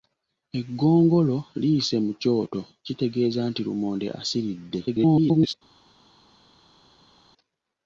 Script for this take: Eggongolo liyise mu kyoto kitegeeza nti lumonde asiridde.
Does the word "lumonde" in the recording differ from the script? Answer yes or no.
no